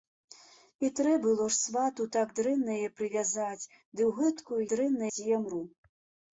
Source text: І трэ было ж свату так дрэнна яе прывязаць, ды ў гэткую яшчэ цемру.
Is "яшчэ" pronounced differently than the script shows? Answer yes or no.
yes